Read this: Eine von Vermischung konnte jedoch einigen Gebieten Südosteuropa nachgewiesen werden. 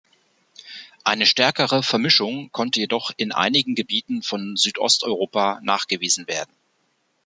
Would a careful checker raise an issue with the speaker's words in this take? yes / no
yes